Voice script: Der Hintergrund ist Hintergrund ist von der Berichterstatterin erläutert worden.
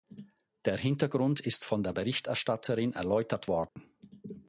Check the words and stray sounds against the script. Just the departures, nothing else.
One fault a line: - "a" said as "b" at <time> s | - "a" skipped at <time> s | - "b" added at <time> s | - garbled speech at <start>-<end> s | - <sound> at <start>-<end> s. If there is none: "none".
- "Hintergrund ist" skipped at 1.6 s
- dropout at 3.7-3.8 s